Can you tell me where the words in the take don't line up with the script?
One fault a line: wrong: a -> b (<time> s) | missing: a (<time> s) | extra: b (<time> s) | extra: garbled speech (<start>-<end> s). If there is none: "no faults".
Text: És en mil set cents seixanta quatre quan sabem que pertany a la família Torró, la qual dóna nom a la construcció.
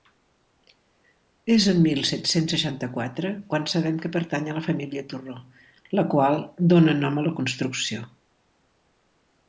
no faults